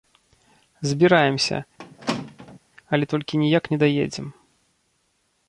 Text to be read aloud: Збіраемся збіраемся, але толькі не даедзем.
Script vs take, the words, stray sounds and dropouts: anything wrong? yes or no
yes